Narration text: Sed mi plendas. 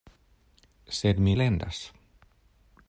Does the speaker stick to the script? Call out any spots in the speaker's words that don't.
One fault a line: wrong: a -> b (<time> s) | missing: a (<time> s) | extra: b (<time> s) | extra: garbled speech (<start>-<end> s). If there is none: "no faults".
no faults